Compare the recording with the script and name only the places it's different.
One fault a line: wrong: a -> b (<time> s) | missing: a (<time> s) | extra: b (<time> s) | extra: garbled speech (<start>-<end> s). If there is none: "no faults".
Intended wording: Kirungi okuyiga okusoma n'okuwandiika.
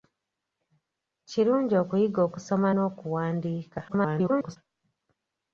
extra: garbled speech (3.9-4.6 s)